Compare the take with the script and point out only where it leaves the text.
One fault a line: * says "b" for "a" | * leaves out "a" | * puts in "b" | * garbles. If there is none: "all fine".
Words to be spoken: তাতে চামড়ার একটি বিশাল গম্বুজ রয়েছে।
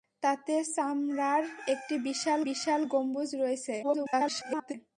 * puts in "বিশাল"
* garbles